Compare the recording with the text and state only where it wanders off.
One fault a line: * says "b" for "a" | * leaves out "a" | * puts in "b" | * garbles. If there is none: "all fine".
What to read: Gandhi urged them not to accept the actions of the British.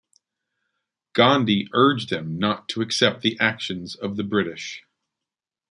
all fine